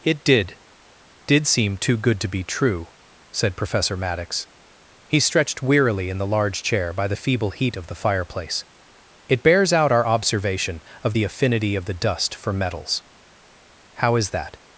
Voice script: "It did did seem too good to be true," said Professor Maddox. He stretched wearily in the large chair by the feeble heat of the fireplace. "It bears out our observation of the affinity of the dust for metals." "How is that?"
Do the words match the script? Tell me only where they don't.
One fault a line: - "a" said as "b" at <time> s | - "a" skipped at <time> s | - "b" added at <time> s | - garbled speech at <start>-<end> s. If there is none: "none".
none